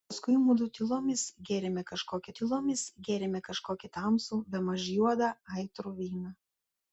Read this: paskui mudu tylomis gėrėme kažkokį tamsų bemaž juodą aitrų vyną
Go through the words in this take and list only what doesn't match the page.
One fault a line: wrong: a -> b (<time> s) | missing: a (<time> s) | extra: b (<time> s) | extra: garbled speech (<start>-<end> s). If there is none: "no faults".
extra: tylomis gėrėme kažkokį (2.4 s)